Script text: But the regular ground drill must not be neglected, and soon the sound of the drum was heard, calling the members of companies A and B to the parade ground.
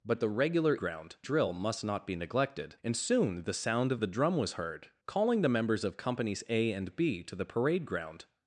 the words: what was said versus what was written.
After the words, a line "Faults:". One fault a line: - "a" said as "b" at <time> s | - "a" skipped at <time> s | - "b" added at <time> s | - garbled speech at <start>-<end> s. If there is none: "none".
But the regular ground drill must not be neglected, and soon the sound of the drum was heard, calling the members of companies A and B to the parade ground.
Faults:
none